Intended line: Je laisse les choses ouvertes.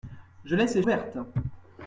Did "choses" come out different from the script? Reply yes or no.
yes